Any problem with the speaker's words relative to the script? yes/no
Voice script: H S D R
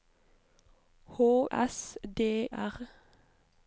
no